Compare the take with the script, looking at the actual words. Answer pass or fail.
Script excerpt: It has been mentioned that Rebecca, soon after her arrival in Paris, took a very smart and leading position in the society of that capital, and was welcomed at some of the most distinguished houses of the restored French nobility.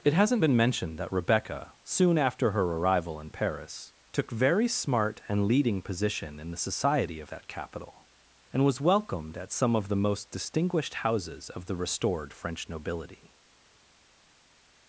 fail